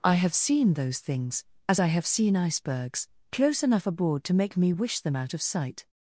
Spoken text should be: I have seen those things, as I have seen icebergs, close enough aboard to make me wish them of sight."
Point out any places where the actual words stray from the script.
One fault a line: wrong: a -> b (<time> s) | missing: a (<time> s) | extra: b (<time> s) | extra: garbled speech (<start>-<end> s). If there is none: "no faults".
extra: out (5.2 s)